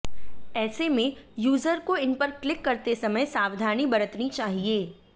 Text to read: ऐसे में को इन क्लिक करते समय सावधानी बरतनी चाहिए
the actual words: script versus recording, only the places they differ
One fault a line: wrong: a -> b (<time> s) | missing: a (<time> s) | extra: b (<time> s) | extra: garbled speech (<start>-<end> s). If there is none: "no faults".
extra: यूजर (1.4 s)
extra: पर (2.1 s)